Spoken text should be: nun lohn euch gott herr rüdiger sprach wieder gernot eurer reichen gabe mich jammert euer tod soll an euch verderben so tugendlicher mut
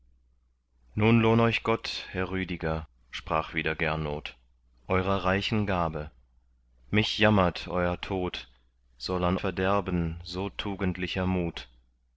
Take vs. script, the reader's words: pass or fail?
fail